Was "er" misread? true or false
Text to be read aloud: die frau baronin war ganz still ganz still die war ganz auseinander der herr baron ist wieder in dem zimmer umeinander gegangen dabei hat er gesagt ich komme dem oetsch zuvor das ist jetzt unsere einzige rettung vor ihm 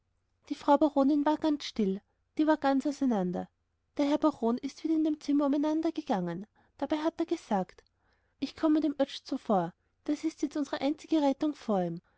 false